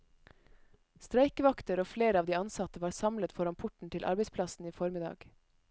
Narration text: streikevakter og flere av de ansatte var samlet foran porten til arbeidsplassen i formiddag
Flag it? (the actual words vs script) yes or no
no